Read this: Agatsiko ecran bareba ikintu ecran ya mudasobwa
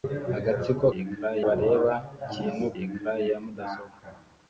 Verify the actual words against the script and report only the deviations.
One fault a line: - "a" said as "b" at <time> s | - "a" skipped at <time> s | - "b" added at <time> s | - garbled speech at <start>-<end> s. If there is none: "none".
none